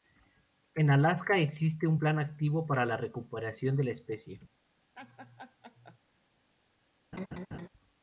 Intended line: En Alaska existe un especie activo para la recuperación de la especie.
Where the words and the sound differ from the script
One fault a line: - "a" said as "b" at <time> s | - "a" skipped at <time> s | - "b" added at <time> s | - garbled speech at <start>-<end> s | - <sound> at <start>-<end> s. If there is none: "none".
- "especie" said as "plan" at 2.0 s
- laugh at 5.0-6.0 s
- laugh at 7.1-7.7 s